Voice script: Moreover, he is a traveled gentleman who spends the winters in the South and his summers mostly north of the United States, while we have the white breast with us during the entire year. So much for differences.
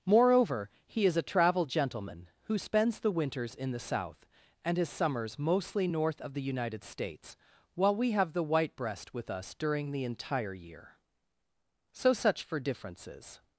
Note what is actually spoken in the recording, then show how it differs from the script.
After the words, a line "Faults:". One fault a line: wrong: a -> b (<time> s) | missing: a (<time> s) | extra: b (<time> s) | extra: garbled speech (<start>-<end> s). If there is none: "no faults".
Moreover, he is a travel gentleman who spends the winters in the South and his summers mostly north of the United States, while we have the white breast with us during the entire year. So such for differences.
Faults:
wrong: traveled -> travel (1.2 s)
wrong: much -> such (12.1 s)